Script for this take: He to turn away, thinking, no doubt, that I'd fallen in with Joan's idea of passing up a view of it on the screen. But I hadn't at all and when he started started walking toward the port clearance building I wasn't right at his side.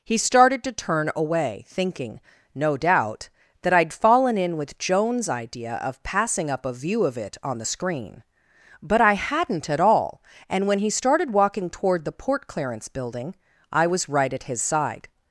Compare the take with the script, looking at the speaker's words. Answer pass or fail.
fail